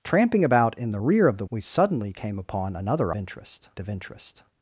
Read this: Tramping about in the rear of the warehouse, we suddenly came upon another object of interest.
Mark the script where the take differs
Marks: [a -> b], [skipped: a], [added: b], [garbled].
Tramping about in the rear of the [skipped: warehouse,] we suddenly came upon another [object -> interest] of interest.